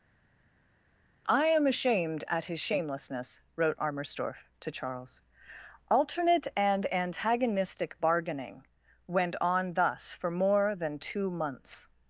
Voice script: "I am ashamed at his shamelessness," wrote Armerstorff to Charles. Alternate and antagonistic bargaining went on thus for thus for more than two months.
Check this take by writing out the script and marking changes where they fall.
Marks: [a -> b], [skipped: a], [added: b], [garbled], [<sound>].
"I am ashamed at his shamelessness," wrote Armerstorff to Charles. Alternate and antagonistic bargaining went on thus for [skipped: thus for] more than two months.